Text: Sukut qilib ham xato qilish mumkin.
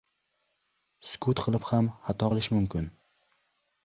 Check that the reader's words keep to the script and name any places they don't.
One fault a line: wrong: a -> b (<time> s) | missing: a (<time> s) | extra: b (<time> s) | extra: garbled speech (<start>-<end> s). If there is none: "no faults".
no faults